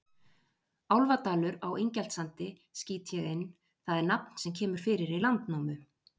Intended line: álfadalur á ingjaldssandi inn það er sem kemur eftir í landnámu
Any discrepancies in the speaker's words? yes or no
yes